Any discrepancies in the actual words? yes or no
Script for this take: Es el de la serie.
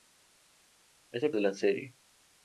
no